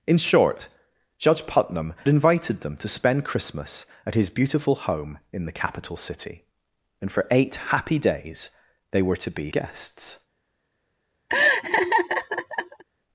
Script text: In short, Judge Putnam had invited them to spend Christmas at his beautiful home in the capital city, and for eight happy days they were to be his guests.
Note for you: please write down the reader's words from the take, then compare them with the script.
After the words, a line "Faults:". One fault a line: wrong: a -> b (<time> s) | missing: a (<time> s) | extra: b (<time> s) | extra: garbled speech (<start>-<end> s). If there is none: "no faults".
In short, Judge Putnam invited them to spend Christmas at his beautiful home in the capital city, and for eight happy days they were to be guests.
Faults:
missing: had (1.9 s)
missing: his (9.5 s)